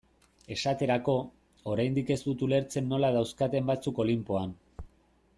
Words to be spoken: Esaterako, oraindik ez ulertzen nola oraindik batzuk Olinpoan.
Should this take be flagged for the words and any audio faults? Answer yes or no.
yes